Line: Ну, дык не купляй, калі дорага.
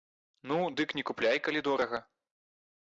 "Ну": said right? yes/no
yes